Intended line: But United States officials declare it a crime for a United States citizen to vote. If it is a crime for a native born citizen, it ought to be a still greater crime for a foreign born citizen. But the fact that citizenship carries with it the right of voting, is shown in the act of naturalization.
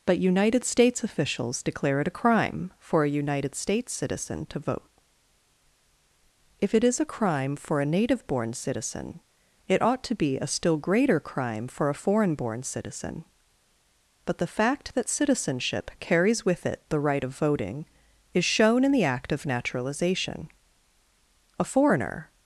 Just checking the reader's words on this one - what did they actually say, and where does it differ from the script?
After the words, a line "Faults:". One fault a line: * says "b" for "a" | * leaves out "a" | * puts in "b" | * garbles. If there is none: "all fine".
But United States officials declare it a crime for a United States citizen to vote. If it is a crime for a native born citizen, it ought to be a still greater crime for a foreign born citizen. But the fact that citizenship carries with it the right of voting, is shown in the act of naturalization. A foreigner
Faults:
* puts in "A foreigner"